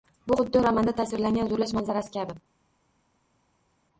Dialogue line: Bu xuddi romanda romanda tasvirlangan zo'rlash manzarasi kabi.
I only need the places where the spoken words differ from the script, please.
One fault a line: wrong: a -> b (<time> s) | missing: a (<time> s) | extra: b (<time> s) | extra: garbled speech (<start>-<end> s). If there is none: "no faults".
missing: romanda (0.9 s)